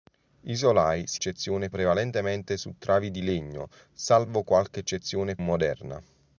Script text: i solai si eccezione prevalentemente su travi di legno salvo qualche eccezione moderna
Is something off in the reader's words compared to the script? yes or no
no